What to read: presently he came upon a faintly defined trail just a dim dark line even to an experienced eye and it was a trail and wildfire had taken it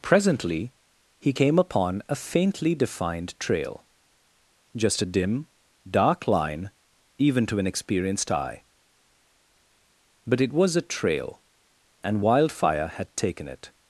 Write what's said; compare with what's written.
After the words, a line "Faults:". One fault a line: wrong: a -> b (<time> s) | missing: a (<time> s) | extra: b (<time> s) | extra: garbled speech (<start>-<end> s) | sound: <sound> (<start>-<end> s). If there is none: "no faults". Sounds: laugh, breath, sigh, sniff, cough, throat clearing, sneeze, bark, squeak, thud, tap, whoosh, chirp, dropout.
presently he came upon a faintly defined trail just a dim dark line even to an experienced eye but it was a trail and wildfire had taken it
Faults:
wrong: and -> but (10.3 s)